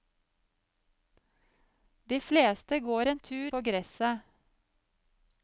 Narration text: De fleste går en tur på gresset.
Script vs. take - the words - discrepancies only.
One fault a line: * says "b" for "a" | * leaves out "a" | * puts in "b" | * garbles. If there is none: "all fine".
all fine